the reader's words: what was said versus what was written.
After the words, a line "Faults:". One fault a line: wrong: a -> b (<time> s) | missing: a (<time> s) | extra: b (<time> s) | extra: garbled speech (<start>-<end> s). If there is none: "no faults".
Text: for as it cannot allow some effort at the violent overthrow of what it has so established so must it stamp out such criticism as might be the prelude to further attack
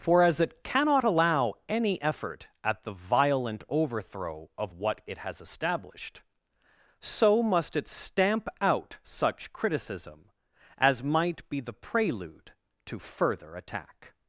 for as it cannot allow any effort at the violent overthrow of what it has established so must it stamp out such criticism as might be the prelude to further attack
Faults:
wrong: some -> any (1.7 s)
missing: so (5.4 s)